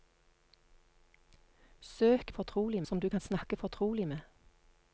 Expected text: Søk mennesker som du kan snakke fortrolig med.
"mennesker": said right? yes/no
no